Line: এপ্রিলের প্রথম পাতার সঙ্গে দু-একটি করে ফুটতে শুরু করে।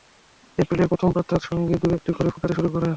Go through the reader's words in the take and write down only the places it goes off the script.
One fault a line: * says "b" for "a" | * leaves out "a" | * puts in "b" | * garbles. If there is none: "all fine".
all fine